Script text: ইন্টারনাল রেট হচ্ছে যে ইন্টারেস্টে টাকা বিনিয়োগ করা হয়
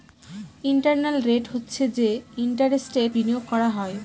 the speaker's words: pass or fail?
fail